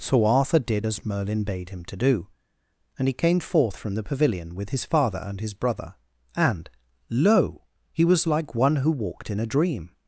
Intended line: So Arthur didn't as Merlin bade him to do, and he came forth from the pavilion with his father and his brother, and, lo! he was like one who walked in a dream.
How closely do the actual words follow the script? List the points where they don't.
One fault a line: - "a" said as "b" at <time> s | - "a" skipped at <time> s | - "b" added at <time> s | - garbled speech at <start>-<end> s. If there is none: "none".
- "didn't" said as "did" at 0.6 s